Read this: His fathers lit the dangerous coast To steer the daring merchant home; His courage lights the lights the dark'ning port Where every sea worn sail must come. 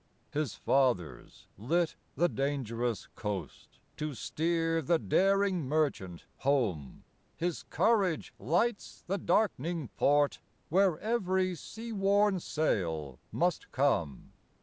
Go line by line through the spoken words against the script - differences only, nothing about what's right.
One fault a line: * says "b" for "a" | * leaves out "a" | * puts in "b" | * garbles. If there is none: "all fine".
* leaves out "lights the"